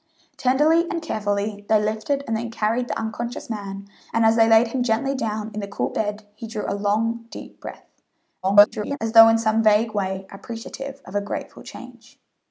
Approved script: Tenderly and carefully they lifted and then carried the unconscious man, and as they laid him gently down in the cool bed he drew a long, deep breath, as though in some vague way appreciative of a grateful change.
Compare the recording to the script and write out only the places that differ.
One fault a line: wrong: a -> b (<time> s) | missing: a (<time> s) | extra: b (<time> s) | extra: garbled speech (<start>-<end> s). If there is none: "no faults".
extra: garbled speech (8.4-9.0 s)